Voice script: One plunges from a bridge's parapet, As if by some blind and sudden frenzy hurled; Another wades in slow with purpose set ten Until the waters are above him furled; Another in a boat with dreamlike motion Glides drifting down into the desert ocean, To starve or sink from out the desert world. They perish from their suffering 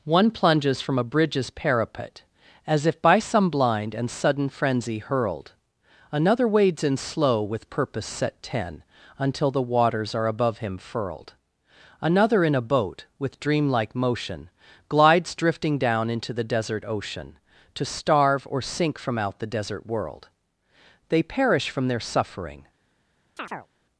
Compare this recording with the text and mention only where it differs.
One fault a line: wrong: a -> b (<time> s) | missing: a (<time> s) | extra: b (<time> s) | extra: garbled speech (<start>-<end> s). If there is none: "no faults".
no faults